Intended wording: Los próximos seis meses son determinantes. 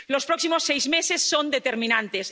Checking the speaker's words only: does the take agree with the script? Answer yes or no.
yes